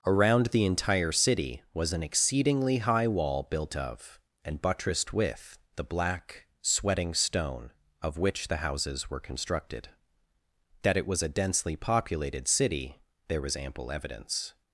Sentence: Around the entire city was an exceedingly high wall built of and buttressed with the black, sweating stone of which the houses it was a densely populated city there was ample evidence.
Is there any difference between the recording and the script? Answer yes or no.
yes